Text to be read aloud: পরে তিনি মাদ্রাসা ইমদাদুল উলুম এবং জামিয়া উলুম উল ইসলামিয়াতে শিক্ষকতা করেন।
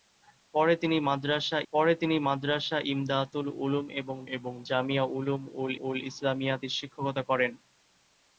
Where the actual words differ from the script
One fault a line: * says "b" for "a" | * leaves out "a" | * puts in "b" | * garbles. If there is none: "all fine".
* puts in "পরে তিনি মাদ্রাসা"
* puts in "এবং"
* puts in "উল"